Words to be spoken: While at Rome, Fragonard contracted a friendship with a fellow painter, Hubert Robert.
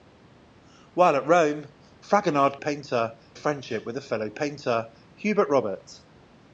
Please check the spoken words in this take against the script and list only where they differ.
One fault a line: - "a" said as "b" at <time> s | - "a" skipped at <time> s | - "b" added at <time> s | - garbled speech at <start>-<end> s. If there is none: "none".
- "contracted" said as "painter" at 2.6 s